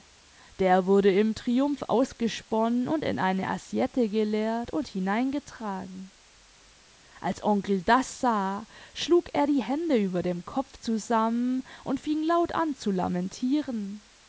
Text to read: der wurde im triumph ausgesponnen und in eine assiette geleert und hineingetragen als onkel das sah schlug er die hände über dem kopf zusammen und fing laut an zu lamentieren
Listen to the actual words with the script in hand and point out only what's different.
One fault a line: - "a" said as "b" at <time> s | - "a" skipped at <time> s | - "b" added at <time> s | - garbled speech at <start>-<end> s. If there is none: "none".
none